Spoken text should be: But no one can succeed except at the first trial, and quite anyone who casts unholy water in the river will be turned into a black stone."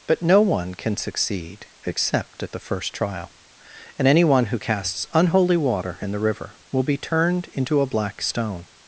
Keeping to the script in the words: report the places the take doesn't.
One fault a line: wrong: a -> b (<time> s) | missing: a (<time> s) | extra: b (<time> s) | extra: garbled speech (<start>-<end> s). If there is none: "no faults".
missing: quite (4.1 s)